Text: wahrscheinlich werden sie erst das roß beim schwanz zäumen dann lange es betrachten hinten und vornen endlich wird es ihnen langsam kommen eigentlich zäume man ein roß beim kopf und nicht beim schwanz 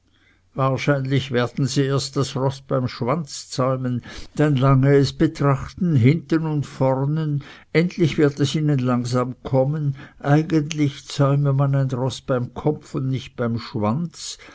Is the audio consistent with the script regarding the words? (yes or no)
yes